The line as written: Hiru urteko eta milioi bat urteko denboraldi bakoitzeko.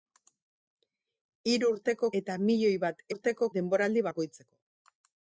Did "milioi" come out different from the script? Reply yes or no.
no